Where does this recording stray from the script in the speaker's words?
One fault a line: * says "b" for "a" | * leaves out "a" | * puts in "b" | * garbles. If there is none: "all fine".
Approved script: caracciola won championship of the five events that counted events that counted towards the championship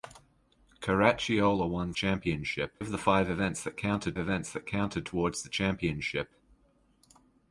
all fine